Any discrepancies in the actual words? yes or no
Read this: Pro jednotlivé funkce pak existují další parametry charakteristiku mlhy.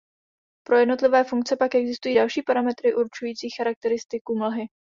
yes